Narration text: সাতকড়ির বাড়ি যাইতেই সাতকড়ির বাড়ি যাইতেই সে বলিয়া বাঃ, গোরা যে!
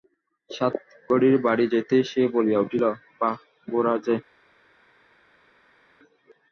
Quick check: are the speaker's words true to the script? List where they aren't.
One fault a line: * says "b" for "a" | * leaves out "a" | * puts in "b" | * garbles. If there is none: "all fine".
* leaves out "সাতকড়ির বাড়ি যাইতেই"
* puts in "উঠিল"